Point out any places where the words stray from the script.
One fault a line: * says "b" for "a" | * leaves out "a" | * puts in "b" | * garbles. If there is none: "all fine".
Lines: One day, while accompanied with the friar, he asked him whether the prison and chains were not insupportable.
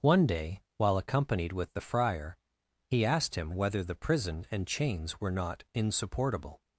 all fine